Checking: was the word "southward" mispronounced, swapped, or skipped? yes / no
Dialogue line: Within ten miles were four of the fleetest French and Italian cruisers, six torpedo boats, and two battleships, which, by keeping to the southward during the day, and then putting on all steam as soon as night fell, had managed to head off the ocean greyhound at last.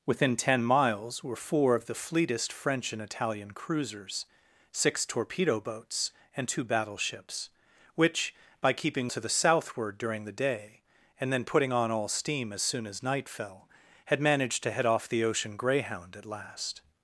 no